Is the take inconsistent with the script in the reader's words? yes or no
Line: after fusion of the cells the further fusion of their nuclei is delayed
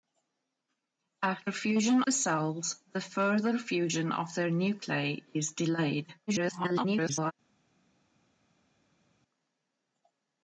yes